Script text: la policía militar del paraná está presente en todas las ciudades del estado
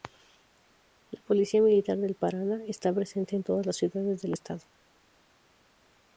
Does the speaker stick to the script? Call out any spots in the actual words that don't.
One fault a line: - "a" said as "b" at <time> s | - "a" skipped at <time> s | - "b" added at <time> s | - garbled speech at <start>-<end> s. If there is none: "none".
none